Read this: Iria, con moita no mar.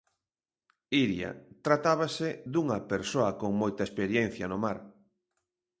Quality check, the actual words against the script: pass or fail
fail